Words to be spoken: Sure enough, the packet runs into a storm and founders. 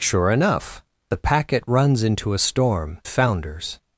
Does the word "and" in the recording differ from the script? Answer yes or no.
yes